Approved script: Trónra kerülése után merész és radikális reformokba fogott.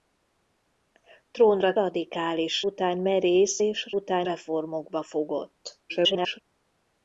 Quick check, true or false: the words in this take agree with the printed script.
false